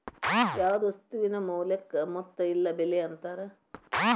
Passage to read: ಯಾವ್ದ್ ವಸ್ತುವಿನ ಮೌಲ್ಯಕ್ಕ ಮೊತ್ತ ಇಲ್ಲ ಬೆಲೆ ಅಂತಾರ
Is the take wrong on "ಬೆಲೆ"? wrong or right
right